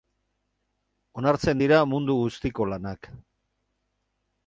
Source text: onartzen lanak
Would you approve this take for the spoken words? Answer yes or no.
no